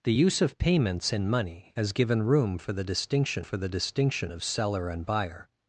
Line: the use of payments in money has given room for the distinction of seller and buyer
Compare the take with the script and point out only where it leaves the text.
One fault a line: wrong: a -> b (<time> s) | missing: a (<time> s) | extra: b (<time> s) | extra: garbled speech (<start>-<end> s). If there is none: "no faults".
extra: for the distinction (3.4 s)